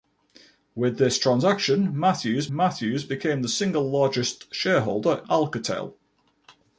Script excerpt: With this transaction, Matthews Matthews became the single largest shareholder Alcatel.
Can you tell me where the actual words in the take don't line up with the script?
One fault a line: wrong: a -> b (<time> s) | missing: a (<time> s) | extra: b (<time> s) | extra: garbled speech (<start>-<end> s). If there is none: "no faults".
no faults